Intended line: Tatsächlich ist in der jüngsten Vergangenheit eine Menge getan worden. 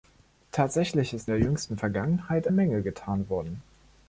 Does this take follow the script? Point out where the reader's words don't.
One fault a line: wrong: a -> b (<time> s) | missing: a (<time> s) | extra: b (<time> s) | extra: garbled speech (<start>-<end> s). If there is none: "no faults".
missing: in (1.3 s)
missing: eine (2.5 s)